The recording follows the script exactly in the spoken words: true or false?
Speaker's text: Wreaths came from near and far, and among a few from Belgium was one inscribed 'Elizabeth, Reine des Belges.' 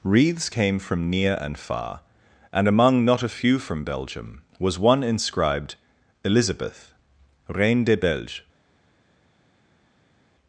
false